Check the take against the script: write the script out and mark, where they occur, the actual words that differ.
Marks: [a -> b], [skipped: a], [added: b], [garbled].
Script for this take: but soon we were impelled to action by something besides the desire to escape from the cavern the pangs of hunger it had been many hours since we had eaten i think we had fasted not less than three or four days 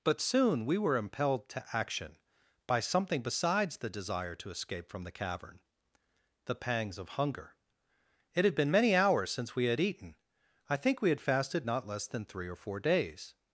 but soon we were impelled to action by something besides the desire to escape from the cavern the pangs of hunger it had been many hours since we had eaten i think we had fasted not less than three or four days